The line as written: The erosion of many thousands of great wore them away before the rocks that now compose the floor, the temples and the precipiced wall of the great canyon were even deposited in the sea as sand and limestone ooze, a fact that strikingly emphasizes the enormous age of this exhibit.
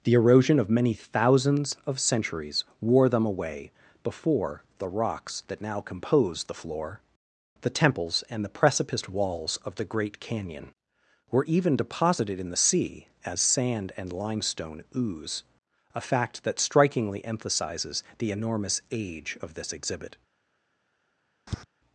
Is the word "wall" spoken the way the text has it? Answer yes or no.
no